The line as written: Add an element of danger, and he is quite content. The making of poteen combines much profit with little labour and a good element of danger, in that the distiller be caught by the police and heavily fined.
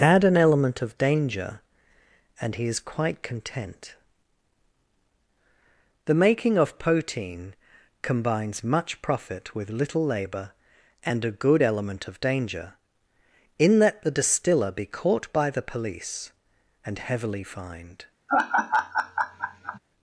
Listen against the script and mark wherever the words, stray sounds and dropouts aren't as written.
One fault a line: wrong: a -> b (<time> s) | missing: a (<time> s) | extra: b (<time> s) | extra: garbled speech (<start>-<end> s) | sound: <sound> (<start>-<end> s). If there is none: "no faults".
sound: laugh (18.3-19.8 s)